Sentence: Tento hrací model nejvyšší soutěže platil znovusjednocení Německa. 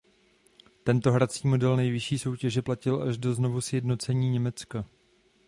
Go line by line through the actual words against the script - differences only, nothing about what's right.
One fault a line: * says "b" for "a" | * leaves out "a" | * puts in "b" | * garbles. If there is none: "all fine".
* puts in "až do"